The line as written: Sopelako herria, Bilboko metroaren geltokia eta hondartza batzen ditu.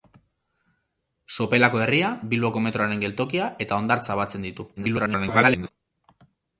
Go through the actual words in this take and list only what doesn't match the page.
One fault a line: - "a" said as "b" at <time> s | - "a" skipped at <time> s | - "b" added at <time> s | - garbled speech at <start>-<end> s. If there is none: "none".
- garbled speech at 4.8-5.7 s